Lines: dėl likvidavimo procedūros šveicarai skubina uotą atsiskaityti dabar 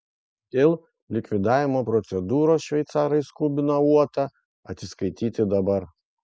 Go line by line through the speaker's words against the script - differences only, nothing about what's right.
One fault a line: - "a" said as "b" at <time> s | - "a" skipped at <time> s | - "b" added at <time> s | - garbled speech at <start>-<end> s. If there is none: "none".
none